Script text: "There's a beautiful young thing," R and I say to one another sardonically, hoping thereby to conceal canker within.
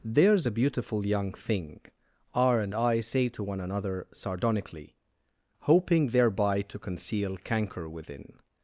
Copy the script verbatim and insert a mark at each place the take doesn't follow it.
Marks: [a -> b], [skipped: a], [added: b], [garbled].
"There's a beautiful young thing," R and I say to one another sardonically, hoping thereby to conceal canker within.